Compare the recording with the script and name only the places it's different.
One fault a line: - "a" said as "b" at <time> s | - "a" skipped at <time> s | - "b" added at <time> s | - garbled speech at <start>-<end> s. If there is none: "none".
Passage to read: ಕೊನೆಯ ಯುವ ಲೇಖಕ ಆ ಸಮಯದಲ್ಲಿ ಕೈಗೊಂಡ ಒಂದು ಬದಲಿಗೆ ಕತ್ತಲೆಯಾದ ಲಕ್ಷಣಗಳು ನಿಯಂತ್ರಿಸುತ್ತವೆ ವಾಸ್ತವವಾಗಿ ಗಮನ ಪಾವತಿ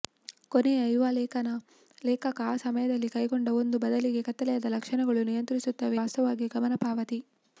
none